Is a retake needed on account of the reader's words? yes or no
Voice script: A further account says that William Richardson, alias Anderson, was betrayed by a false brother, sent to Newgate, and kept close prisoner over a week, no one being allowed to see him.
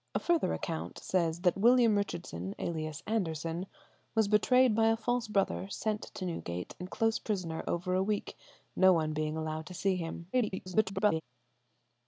yes